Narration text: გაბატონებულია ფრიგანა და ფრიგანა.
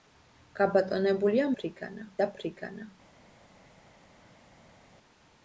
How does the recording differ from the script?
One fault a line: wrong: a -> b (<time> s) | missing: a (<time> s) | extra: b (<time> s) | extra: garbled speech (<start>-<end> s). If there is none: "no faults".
no faults